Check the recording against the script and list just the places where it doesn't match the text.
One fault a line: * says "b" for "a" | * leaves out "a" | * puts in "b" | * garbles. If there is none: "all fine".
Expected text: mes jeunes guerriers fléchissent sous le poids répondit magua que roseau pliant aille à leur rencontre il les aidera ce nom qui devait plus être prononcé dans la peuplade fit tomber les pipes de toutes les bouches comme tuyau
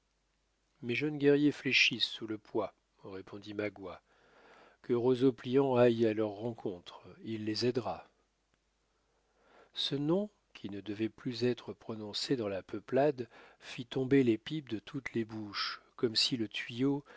* puts in "ne"
* puts in "si le"